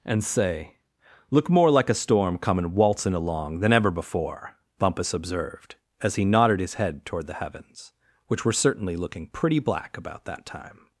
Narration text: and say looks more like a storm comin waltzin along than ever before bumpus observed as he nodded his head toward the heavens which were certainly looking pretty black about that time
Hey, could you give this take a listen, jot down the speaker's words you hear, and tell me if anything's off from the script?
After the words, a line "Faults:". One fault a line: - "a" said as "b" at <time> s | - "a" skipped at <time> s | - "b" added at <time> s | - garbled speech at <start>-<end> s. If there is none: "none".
and say look more like a storm comin waltzin along than ever before bumpus observed as he nodded his head toward the heavens which were certainly looking pretty black about that time
Faults:
- "looks" said as "look" at 1.3 s